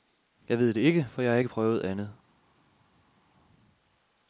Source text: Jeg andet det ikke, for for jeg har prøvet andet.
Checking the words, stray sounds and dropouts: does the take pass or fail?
fail